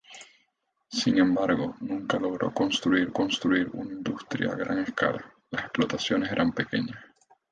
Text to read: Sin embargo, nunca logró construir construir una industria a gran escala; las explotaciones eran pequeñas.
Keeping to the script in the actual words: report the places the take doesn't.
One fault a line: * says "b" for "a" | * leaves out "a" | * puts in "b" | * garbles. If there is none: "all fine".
all fine